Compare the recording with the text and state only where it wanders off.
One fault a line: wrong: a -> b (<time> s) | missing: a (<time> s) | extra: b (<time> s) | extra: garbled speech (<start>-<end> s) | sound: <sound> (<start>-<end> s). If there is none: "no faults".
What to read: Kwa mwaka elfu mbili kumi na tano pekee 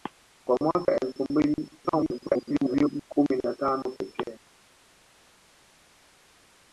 extra: garbled speech (1.8-3.0 s)